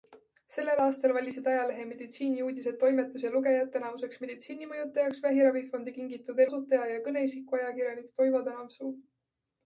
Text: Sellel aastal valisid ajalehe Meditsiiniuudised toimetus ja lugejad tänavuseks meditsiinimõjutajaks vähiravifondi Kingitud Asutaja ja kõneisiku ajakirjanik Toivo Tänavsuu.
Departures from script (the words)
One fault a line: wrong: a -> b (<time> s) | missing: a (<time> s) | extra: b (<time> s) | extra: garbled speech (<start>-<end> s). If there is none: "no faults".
no faults